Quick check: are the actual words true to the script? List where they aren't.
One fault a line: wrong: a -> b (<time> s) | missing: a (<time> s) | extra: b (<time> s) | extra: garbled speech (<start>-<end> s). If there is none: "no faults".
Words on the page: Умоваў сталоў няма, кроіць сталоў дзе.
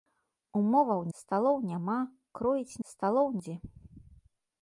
no faults